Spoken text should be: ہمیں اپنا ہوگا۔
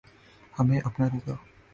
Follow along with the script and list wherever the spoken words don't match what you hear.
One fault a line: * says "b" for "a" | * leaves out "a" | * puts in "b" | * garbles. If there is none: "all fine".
all fine